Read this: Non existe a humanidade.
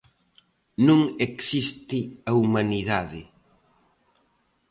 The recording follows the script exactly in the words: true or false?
true